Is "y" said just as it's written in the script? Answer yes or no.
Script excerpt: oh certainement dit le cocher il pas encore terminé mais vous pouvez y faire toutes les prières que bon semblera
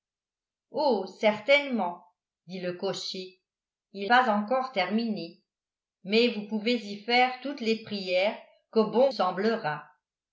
yes